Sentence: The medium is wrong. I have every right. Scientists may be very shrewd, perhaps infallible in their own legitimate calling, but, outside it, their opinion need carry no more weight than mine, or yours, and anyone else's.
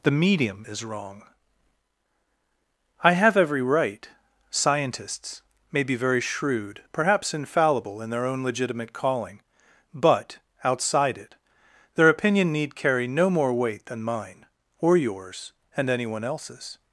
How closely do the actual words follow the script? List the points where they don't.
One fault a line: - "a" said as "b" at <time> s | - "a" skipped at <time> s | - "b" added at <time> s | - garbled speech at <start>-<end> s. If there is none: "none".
none